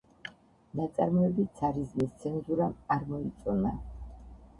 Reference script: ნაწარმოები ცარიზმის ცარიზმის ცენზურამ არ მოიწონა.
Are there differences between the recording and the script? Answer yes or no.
yes